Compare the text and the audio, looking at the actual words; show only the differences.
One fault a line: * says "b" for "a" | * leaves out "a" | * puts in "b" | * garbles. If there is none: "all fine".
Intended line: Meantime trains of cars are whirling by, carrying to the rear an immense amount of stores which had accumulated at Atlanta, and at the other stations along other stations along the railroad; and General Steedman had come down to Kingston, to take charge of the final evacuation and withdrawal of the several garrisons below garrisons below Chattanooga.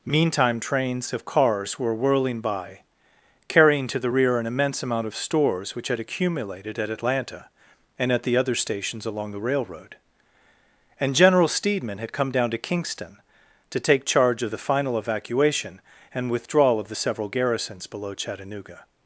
* says "were" for "are"
* leaves out "other stations along"
* leaves out "garrisons below"